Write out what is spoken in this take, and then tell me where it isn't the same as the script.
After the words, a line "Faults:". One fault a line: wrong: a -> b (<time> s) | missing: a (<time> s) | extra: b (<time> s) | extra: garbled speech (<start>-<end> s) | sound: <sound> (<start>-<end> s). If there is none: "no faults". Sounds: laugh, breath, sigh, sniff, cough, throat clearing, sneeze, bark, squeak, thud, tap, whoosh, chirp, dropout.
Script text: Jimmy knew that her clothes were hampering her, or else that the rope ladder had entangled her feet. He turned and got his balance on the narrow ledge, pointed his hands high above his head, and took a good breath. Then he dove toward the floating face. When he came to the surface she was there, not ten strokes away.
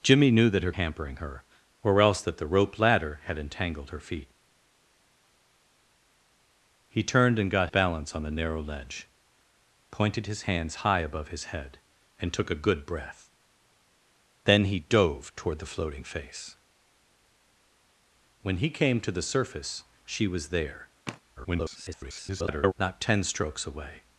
Jimmy knew that her hampering her, or else that the rope ladder had entangled her feet. He turned and got balance on the narrow ledge, pointed his hands high above his head, and took a good breath. Then he dove toward the floating face. When he came to the surface she was there, [garbled] not ten strokes away.
Faults:
missing: clothes were (0.7 s)
missing: his (7.7 s)
sound: sigh (21.1-21.2 s)
extra: garbled speech (21.4-22.7 s)